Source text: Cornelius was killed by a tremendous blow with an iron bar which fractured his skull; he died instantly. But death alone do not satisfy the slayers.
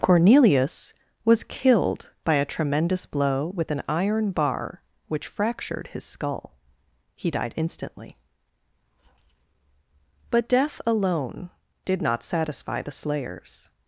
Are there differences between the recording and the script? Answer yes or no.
yes